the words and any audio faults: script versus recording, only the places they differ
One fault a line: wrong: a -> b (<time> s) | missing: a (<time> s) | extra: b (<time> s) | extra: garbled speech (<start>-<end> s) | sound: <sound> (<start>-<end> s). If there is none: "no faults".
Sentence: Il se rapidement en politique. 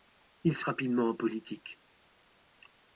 no faults